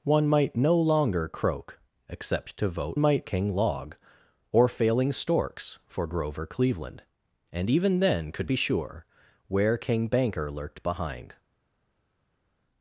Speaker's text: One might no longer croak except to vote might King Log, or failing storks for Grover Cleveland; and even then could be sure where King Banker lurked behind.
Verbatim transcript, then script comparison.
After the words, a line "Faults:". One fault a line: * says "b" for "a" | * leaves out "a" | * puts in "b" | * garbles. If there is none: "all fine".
One might no longer croak except to vote might King Log, or failing storks for Grover Cleveland; and even then could be sure where King Banker lurked behind.
Faults:
all fine